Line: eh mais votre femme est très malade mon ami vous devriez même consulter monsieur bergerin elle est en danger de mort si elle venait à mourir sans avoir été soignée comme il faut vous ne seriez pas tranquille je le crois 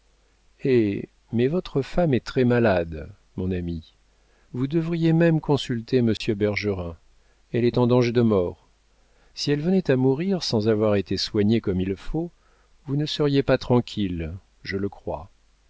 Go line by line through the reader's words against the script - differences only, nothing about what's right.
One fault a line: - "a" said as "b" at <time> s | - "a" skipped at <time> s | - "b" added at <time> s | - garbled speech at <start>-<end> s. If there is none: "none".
none